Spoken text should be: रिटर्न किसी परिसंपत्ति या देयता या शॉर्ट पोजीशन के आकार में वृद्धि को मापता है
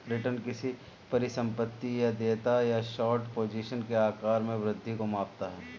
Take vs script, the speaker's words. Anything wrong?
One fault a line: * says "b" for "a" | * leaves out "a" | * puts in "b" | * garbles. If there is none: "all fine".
all fine